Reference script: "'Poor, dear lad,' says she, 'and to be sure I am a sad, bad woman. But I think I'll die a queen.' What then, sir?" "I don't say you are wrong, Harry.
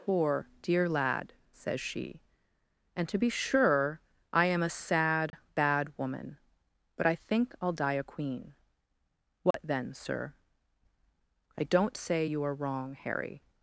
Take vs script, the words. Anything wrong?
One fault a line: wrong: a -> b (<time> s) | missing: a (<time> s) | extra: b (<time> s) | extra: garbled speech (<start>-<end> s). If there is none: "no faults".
no faults